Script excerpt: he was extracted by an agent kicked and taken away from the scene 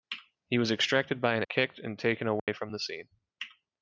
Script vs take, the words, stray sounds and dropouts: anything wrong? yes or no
yes